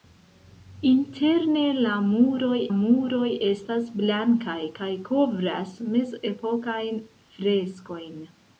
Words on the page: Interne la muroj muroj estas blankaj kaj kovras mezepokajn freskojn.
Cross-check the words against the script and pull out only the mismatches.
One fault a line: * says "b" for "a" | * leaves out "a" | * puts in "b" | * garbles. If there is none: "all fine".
all fine